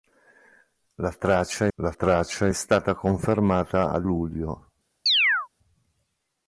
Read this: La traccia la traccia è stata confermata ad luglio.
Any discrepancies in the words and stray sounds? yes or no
yes